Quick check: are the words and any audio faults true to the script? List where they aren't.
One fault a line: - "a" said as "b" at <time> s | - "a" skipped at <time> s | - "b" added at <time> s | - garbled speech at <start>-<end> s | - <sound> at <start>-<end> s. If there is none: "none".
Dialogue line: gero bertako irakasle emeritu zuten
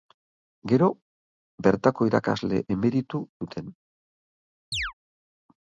- chirp at 4.7-4.9 s